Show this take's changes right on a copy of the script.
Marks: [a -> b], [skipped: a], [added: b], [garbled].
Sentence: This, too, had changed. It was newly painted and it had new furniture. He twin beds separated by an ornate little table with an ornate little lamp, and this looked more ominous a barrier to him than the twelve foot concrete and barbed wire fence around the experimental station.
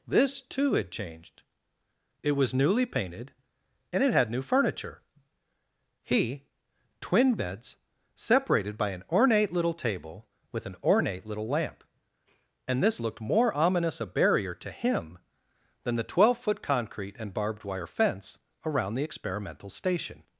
This, too, had changed. It was newly painted and it had new furniture. He twin beds separated by an ornate little table with an ornate little lamp, and this looked more ominous a barrier to him than the twelve foot concrete and barbed wire fence around the experimental station.